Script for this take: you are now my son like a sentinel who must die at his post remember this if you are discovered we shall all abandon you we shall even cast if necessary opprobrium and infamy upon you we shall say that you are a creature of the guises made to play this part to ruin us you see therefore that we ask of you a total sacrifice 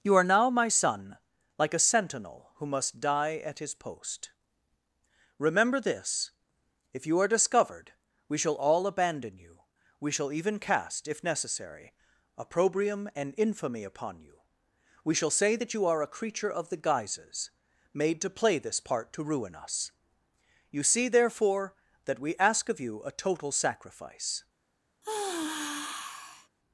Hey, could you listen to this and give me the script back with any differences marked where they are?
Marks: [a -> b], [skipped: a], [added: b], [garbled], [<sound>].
you are now my son like a sentinel who must die at his post remember this if you are discovered we shall all abandon you we shall even cast if necessary opprobrium and infamy upon you we shall say that you are a creature of the guises made to play this part to ruin us you see therefore that we ask of you a total sacrifice [sigh]